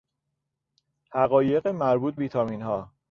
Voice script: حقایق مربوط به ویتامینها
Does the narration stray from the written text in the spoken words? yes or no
yes